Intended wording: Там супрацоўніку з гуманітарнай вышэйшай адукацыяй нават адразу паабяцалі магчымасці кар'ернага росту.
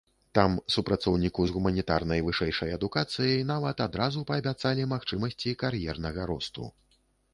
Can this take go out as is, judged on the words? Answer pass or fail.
pass